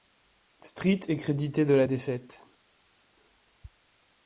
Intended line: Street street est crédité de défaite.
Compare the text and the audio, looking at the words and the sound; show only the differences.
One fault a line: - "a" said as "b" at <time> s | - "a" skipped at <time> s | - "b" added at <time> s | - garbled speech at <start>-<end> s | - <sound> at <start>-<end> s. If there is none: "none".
- "street" skipped at 1.0 s
- "la" added at 1.7 s